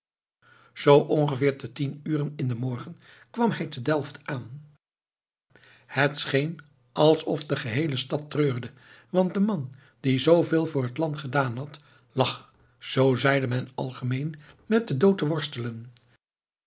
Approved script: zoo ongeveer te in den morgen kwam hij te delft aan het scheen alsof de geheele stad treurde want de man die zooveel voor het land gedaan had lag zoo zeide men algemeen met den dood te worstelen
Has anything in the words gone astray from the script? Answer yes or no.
yes